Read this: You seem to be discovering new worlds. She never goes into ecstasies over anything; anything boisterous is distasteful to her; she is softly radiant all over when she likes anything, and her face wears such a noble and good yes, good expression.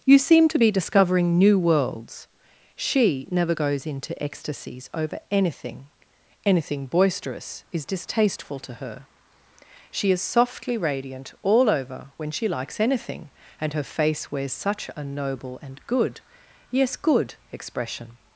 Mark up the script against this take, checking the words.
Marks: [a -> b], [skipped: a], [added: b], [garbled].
You seem to be discovering new worlds. She never goes into ecstasies over anything; anything boisterous is distasteful to her; she is softly radiant all over when she likes anything, and her face wears such a noble and good yes, good expression.